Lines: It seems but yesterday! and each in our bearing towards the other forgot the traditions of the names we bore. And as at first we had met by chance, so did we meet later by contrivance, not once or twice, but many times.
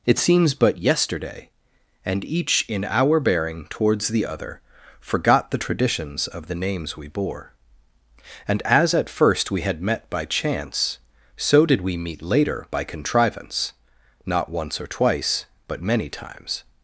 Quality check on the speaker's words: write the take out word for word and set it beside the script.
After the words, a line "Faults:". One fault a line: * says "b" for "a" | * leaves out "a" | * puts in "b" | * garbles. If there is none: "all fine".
It seems but yesterday! and each in our bearing towards the other forgot the traditions of the names we bore. And as at first we had met by chance, so did we meet later by contrivance, not once or twice, but many times.
Faults:
all fine